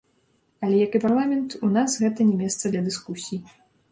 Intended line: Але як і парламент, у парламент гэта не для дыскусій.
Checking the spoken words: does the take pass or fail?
fail